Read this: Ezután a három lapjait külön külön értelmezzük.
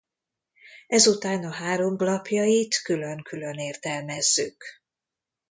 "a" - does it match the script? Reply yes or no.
yes